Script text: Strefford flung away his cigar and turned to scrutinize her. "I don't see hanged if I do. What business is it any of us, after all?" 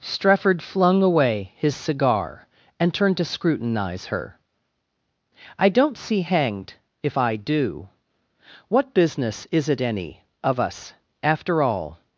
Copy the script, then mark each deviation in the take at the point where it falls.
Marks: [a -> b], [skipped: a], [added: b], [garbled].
Strefford flung away his cigar and turned to scrutinize her. "I don't see hanged if I do. What business is it any of us, after all?"